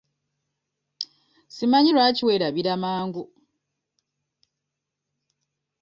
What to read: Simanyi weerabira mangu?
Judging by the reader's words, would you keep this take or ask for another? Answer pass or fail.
fail